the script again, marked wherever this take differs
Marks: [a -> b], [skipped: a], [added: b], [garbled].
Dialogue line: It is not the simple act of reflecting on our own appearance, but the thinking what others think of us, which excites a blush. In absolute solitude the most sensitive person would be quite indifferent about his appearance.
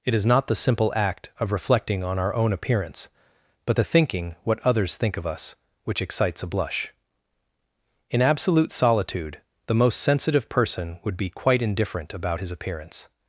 It is not the simple act of reflecting on our own appearance, but the thinking what others think of us, which excites a blush. In absolute solitude the most sensitive person would be quite indifferent about his appearance.